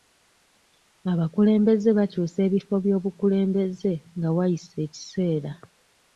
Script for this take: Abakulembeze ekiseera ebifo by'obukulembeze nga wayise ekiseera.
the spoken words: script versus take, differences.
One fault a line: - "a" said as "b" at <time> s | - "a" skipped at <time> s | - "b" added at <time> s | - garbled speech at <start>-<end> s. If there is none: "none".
- "ekiseera" said as "bakyusa" at 2.0 s